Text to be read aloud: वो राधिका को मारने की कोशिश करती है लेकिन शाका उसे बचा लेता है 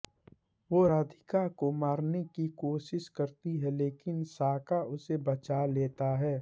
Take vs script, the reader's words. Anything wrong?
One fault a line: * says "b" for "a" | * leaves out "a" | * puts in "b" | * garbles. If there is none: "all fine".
all fine